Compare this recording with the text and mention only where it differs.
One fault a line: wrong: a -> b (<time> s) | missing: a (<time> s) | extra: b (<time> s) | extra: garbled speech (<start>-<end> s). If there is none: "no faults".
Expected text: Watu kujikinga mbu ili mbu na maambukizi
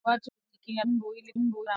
no faults